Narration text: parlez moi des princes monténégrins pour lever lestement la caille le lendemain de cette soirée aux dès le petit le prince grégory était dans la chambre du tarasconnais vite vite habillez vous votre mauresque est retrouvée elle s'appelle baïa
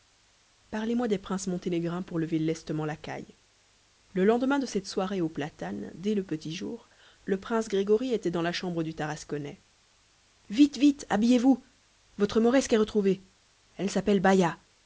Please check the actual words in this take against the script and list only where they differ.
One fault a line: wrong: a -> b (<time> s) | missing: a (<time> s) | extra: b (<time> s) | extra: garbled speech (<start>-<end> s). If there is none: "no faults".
extra: platanes (5.3 s)
extra: jour (6.5 s)